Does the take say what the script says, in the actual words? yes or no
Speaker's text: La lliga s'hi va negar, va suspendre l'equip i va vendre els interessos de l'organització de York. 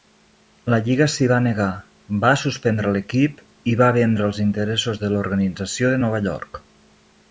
no